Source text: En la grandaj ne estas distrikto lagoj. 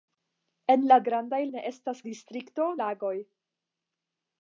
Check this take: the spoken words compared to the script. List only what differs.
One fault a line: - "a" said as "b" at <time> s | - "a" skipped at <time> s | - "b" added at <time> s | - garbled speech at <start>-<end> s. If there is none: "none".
none